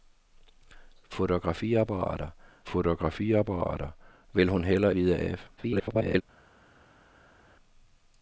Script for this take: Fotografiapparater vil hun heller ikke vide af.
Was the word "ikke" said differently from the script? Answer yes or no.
yes